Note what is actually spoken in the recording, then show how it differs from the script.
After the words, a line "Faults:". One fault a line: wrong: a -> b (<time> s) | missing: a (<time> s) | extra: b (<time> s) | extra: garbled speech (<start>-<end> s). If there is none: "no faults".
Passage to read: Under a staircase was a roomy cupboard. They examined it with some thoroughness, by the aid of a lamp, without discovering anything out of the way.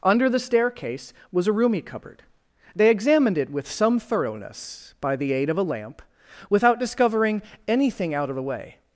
Under the staircase was a roomy cupboard. They examined it with some thoroughness, by the aid of a lamp, without discovering anything out of the way.
Faults:
wrong: a -> the (0.3 s)